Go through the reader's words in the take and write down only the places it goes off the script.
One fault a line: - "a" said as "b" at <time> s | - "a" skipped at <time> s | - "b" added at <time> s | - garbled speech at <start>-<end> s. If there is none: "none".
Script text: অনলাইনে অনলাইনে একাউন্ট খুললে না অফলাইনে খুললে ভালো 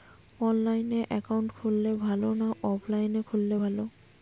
- "অনলাইনে" skipped at 1.0 s
- "ভালো" added at 2.0 s